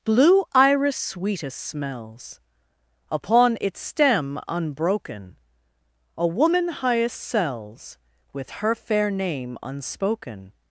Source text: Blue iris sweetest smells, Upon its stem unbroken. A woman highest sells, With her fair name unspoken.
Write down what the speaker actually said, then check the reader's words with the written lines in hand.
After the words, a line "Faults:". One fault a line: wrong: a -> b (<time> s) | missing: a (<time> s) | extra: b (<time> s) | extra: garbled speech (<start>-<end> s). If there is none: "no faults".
Blue iris sweetest smells, Upon its stem unbroken. A woman highest sells, With her fair name unspoken.
Faults:
no faults